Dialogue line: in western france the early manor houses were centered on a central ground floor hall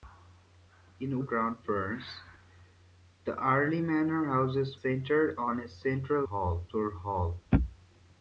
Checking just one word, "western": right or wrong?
wrong